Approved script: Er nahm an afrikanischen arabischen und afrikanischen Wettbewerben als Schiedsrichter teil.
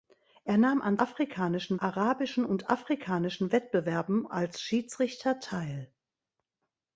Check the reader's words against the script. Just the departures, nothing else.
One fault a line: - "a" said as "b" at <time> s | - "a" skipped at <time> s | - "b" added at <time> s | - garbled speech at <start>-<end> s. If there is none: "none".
none